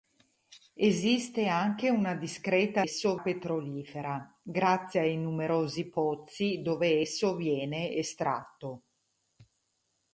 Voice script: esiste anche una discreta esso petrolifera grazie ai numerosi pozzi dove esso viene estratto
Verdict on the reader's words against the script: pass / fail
pass